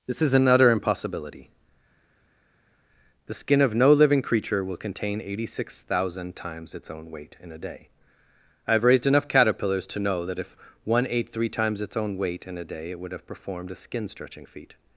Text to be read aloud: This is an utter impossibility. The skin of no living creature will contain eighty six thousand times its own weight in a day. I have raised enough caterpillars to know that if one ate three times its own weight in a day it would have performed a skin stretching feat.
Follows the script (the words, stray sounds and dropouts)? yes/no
yes